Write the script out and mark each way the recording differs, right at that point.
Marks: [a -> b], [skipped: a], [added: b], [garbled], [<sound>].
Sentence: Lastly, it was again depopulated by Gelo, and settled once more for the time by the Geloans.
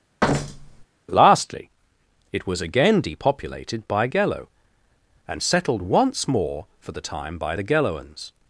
[thud] Lastly, it was again depopulated by Gelo, and settled once more for the time by the Geloans.